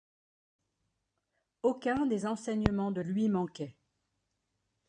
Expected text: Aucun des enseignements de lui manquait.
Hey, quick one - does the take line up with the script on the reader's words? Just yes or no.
yes